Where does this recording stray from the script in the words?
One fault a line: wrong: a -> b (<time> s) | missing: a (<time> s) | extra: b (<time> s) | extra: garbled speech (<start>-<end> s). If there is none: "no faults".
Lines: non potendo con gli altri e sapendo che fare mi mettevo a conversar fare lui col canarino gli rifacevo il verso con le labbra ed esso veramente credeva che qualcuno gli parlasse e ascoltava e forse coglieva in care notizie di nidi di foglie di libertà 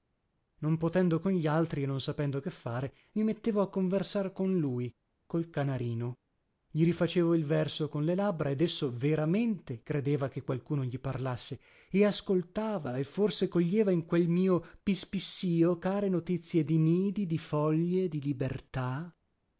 extra: non (1.9 s)
wrong: fare -> con (4.3 s)
extra: quel mio pispissìo (14.1 s)